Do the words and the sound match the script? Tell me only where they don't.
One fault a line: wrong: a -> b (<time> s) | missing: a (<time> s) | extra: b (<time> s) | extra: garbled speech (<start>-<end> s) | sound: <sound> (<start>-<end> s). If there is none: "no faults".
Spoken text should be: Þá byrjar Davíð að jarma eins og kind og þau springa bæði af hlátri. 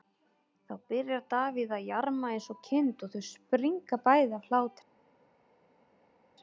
no faults